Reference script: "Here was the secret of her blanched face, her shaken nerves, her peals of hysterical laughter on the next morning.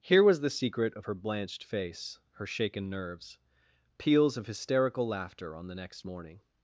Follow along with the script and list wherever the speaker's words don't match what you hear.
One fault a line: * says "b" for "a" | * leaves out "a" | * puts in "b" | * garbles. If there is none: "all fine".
* leaves out "her"